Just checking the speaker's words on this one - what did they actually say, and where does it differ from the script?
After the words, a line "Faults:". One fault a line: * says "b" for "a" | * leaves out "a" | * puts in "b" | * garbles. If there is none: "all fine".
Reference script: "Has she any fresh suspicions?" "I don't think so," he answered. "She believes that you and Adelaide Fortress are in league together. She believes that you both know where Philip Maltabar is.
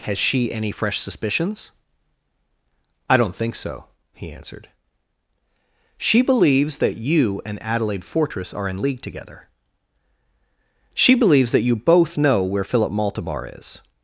"Has she any fresh suspicions?" "I don't think so," he answered. "She believes that you and Adelaide Fortress are in league together. She believes that you both know where Philip Maltabar is.
Faults:
all fine